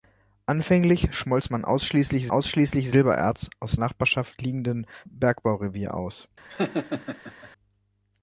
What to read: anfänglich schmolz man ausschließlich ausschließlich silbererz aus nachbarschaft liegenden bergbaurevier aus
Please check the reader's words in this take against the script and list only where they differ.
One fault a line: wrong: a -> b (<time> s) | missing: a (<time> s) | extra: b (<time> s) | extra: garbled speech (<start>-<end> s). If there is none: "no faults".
no faults